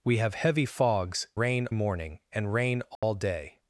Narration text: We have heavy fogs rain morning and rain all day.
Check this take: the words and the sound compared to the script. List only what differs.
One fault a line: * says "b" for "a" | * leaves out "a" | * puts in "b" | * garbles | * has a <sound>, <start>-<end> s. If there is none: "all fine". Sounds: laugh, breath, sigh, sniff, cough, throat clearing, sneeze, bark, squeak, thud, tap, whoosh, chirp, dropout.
* has a dropout, 3.0-3.0 s